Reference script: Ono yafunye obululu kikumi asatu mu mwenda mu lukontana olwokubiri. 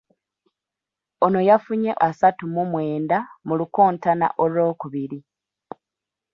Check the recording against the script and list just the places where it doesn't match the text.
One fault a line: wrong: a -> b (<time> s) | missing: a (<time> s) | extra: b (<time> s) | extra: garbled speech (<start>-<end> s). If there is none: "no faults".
missing: obululu kikumi (1.9 s)